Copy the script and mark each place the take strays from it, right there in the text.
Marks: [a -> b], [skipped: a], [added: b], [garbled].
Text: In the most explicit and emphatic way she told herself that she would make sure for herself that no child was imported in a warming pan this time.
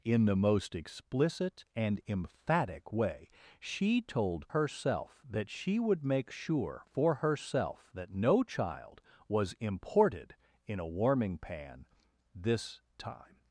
In the most explicit and emphatic way she told herself that she would make sure for herself that no child was imported in a warming pan this time.